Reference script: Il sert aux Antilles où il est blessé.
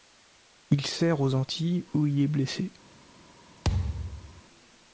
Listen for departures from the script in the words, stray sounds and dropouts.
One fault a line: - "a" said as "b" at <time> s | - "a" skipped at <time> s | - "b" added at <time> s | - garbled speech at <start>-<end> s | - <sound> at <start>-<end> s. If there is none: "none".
- thud at 3.6-4.4 s